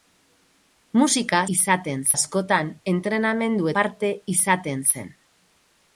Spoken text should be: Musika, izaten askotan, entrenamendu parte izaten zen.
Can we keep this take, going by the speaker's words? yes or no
yes